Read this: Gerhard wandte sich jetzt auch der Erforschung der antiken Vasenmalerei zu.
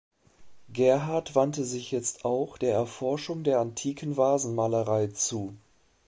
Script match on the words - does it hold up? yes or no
yes